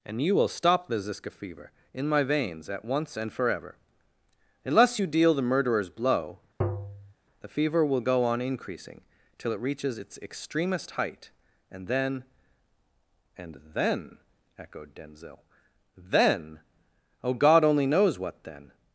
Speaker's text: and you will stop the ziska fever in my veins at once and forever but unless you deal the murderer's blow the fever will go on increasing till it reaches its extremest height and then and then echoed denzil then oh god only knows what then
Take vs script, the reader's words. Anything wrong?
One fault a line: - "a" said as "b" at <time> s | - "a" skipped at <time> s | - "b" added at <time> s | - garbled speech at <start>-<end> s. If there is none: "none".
- "but" skipped at 3.8 s